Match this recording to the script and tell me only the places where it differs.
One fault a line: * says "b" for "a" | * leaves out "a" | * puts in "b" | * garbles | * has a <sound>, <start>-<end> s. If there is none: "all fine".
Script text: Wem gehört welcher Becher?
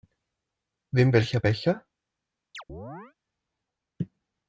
* leaves out "gehört"
* has a chirp, 2.5-3.1 s